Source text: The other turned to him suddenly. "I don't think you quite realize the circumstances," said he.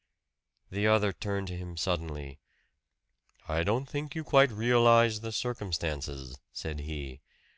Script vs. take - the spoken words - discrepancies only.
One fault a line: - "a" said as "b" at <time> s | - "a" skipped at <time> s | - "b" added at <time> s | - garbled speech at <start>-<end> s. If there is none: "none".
none